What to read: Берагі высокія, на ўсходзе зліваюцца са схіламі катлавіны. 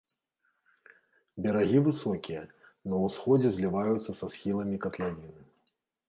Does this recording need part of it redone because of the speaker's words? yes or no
no